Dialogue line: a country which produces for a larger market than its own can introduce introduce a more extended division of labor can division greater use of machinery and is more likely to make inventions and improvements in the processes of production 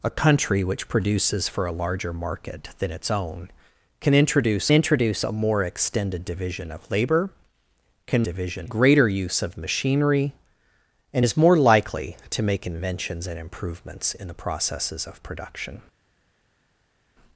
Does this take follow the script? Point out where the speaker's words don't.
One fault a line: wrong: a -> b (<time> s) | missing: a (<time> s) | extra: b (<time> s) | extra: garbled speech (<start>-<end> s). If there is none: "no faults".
no faults